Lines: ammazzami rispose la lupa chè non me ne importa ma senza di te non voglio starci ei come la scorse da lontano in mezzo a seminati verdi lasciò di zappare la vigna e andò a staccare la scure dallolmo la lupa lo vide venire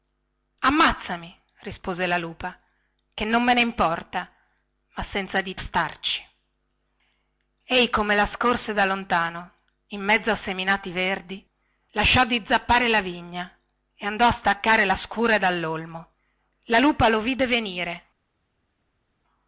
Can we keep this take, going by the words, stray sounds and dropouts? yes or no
no